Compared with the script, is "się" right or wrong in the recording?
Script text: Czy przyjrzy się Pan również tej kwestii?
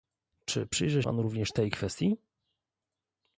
wrong